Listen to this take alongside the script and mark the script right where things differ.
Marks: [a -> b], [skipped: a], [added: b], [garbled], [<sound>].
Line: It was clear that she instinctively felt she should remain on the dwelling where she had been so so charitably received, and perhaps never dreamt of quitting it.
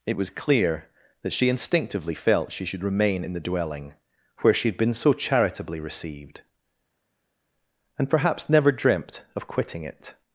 It was clear that she instinctively felt she should remain [on -> in] the dwelling where she had been so [skipped: so] charitably received, and perhaps never dreamt of quitting it.